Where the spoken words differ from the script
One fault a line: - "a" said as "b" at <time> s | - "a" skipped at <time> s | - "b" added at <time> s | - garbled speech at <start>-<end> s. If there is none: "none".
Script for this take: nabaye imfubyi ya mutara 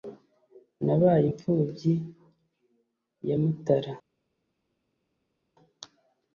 none